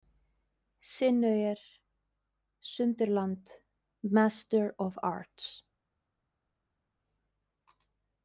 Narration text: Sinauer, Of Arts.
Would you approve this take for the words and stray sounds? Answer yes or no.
no